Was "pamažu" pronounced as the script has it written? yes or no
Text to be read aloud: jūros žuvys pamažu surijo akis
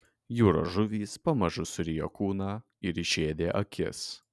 yes